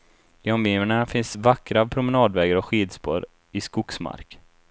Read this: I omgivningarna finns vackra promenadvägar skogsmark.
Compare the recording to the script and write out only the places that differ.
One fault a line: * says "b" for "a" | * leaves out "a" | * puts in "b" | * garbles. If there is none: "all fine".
* puts in "och skidspår i"